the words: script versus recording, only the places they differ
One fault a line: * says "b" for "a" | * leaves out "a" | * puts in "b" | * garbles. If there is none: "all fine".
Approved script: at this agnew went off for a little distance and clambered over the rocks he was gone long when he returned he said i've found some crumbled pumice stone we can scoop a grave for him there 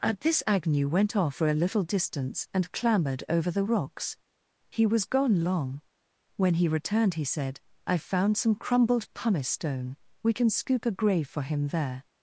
all fine